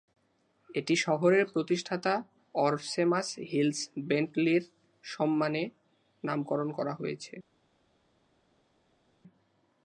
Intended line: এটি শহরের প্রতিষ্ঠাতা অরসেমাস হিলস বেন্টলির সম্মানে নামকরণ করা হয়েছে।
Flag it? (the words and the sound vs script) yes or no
no